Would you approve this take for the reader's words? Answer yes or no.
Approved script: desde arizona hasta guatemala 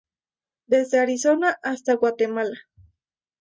yes